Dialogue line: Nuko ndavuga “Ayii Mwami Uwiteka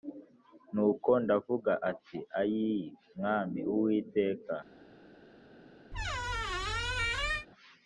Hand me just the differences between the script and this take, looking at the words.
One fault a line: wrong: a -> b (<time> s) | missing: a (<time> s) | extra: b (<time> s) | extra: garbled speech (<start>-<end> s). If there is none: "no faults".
extra: nti (2.0 s)